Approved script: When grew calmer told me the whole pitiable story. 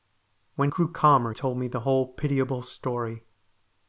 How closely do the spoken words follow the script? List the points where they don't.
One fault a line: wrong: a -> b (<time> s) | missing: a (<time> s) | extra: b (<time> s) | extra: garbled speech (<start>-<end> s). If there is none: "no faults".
no faults